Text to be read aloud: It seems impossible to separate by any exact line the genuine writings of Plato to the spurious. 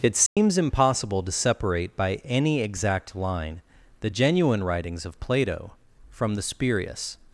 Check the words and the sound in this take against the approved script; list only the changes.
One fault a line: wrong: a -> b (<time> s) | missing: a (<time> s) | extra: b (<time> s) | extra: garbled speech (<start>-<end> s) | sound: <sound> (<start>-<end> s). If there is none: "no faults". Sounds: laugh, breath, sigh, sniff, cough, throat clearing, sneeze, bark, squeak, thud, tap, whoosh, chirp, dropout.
sound: dropout (0.3-0.4 s)
wrong: to -> from (6.1 s)